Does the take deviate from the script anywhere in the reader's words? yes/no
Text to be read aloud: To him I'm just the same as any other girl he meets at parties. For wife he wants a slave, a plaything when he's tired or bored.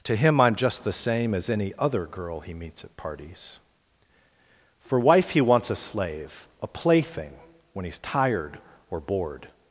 no